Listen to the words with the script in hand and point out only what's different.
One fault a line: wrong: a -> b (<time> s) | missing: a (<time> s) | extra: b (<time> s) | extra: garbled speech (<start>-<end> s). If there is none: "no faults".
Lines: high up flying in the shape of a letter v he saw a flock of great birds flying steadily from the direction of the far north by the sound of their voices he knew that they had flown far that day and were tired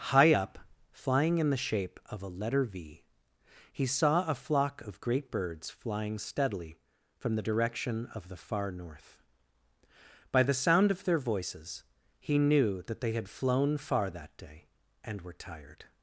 no faults